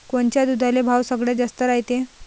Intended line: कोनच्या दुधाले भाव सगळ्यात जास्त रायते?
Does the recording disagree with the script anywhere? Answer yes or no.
no